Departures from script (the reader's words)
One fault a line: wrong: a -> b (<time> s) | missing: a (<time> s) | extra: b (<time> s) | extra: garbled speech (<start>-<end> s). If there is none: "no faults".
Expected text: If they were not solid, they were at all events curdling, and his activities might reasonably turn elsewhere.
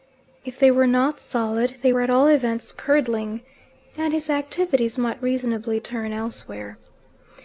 no faults